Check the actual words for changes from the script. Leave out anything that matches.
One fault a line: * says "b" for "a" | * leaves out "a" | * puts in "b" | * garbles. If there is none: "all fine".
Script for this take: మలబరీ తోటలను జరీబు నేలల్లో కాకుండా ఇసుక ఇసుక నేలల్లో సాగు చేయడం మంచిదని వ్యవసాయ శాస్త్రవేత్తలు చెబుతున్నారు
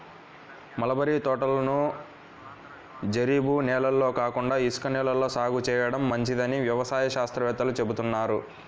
* leaves out "ఇసుక"